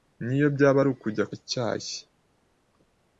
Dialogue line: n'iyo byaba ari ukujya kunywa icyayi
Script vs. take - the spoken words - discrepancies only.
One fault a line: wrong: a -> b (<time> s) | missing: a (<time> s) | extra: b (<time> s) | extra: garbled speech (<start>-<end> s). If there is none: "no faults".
missing: kunywa (1.2 s)